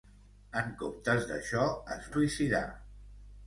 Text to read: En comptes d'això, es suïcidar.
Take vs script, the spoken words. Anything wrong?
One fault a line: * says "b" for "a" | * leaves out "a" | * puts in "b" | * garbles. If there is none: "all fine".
all fine